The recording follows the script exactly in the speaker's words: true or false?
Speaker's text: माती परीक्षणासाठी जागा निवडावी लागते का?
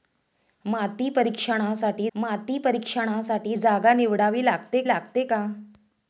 false